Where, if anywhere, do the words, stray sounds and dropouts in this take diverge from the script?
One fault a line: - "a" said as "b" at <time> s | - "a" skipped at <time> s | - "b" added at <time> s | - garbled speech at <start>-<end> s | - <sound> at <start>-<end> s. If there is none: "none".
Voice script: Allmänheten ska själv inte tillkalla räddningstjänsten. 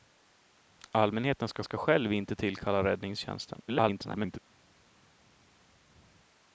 - "ska" added at 1.6 s
- garbled speech at 3.7-4.4 s